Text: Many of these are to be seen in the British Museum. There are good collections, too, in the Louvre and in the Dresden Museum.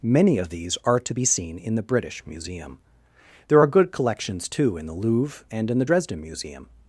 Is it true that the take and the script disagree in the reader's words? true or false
false